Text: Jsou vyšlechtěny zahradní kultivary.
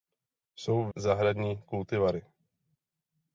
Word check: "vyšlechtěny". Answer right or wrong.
wrong